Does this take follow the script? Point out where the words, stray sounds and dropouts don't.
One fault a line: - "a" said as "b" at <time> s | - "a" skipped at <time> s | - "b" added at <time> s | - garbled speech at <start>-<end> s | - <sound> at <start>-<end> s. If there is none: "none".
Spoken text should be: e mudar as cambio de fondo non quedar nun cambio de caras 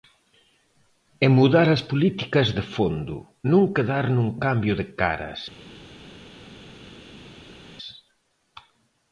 - "cambio" said as "políticas" at 1.9 s